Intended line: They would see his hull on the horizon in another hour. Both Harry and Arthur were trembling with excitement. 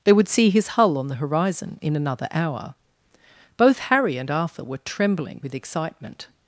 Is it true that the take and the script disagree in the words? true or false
false